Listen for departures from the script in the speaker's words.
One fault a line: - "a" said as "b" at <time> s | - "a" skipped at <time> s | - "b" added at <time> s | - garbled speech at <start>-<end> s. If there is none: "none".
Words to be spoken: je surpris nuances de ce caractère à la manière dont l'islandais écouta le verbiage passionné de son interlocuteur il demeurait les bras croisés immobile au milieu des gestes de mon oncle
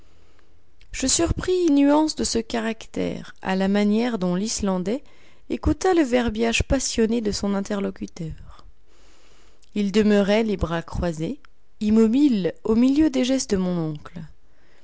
none